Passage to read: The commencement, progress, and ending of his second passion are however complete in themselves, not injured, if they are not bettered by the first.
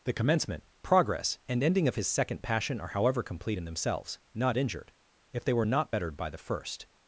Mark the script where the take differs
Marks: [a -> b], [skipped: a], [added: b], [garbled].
The commencement, progress, and ending of his second passion are however complete in themselves, not injured, if they [are -> were] not bettered by the first.